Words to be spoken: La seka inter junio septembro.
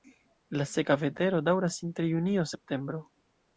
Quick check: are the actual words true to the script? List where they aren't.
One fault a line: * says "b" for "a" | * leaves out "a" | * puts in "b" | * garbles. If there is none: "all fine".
* puts in "vetero daŭras"